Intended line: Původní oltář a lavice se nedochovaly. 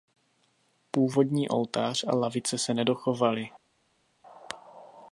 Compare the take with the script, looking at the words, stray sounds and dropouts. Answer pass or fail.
pass